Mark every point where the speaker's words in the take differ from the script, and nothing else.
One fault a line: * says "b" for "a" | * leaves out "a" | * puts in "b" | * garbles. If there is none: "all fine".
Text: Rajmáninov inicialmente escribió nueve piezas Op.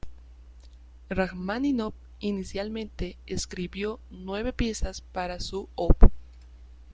* puts in "para su"